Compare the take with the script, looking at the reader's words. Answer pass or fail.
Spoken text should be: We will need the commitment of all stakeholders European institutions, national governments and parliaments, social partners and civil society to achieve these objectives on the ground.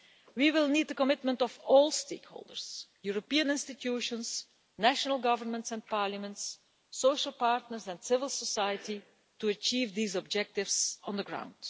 pass